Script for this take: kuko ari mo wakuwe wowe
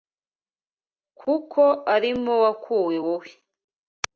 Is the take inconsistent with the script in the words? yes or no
no